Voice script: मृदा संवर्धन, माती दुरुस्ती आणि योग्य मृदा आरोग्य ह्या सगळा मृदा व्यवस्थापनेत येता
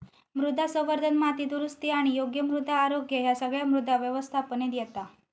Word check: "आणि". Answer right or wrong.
right